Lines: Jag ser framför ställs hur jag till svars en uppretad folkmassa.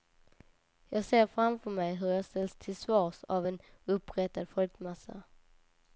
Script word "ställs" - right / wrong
wrong